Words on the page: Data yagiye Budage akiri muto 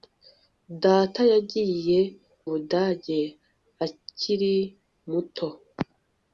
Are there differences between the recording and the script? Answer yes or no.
no